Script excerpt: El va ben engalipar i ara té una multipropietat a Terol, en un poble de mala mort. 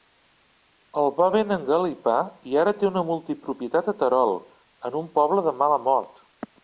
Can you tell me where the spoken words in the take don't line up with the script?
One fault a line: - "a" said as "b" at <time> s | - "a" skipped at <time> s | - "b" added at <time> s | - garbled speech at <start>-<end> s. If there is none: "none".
none